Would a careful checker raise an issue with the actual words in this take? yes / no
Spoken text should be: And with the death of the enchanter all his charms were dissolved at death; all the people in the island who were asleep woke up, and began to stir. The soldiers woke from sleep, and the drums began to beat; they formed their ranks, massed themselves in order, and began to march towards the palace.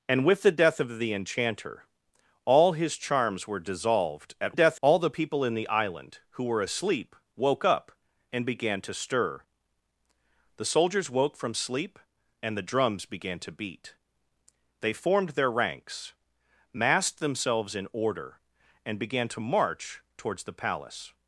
no